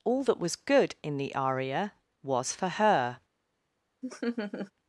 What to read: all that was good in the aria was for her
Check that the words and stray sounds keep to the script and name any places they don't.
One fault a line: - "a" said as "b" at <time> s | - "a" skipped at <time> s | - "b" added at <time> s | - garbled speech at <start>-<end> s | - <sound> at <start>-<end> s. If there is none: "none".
- laugh at 4.0-4.7 s